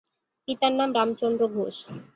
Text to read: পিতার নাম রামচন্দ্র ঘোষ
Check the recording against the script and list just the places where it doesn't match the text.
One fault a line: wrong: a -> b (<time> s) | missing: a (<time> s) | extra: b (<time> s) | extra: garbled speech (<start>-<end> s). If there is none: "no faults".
no faults